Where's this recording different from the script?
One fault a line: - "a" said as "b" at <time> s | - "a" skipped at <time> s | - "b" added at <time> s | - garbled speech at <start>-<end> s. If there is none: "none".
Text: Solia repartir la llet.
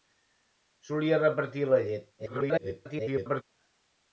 - garbled speech at 2.2-3.4 s